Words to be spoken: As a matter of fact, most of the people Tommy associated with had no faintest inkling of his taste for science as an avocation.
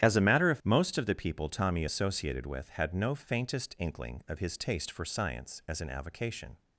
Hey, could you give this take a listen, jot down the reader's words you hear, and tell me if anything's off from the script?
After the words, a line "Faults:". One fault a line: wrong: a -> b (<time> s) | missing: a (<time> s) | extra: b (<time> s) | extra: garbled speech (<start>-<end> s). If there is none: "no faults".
As a matter of most of the people Tommy associated with had no faintest inkling of his taste for science as an avocation.
Faults:
missing: fact (0.6 s)